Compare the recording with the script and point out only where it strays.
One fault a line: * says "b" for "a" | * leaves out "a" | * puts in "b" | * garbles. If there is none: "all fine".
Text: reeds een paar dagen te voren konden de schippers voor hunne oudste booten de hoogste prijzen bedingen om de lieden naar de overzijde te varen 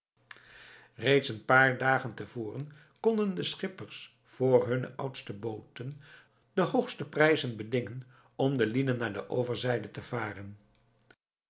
all fine